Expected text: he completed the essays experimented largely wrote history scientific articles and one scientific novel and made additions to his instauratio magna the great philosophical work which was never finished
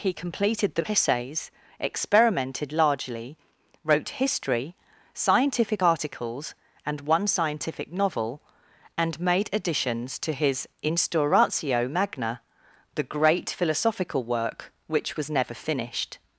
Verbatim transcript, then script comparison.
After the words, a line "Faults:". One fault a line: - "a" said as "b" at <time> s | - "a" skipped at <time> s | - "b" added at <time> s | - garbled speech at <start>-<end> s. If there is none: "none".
he completed the essays experimented largely wrote history scientific articles and one scientific novel and made additions to his instauratio magna the great philosophical work which was never finished
Faults:
none